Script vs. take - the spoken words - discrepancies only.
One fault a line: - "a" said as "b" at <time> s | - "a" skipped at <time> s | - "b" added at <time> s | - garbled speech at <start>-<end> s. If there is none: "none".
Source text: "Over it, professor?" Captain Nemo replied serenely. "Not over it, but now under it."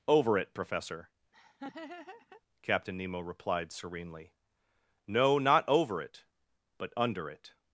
- "No" added at 5.1 s
- "now" skipped at 6.9 s